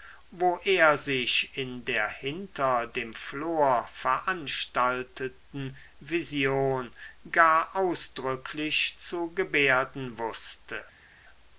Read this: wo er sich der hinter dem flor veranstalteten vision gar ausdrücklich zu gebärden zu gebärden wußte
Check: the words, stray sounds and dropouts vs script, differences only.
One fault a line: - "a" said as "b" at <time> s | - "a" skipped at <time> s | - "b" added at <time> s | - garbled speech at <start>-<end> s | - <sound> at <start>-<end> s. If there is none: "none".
- "in" added at 1.6 s
- "zu gebärden" skipped at 10.2 s